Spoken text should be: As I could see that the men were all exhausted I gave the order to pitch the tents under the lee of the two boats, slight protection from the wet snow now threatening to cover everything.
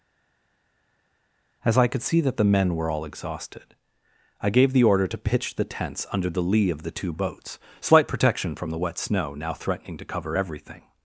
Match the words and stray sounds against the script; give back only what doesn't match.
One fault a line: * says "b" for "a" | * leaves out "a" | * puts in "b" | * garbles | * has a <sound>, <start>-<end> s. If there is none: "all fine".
all fine